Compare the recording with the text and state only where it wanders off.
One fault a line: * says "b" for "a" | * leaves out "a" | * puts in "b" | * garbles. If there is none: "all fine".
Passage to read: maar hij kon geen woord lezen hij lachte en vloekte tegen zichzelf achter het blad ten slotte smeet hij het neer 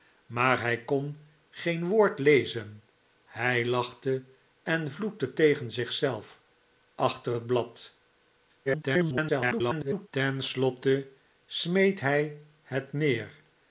* garbles